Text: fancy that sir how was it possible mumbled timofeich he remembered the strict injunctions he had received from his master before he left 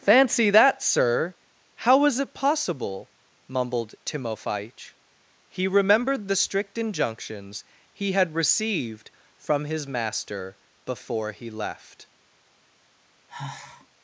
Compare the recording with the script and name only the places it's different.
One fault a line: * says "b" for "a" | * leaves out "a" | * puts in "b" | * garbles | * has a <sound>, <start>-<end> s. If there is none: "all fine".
* has a sigh, 13.3-13.9 s